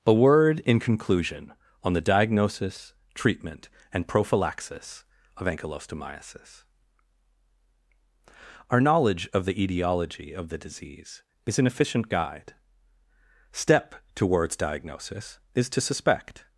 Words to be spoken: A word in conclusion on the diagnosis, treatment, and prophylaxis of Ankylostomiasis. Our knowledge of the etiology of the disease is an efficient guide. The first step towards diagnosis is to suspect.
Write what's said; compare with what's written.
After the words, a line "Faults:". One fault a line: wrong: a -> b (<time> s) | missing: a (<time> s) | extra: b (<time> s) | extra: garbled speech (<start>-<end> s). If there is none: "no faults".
A word in conclusion on the diagnosis, treatment, and prophylaxis of Ankylostomiasis. Our knowledge of the etiology of the disease is an efficient guide. step towards diagnosis is to suspect.
Faults:
missing: The first (12.5 s)